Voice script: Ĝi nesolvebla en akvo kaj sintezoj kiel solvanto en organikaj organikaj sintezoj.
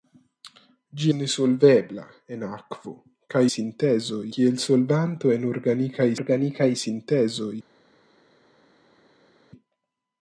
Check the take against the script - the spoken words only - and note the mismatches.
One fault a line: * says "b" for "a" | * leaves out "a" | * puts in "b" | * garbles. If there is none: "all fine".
all fine